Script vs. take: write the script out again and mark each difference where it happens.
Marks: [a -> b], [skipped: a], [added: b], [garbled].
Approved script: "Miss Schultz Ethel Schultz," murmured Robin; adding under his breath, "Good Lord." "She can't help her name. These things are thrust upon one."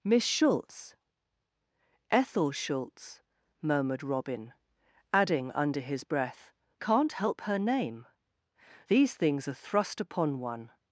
"Miss Schultz Ethel Schultz," murmured Robin; adding under his breath, [skipped: "Good Lord." "She] can't help her name. These things are thrust upon one."